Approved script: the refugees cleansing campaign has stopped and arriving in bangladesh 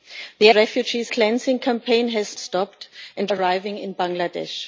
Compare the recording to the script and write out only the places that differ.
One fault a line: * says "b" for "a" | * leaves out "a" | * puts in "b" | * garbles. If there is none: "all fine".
all fine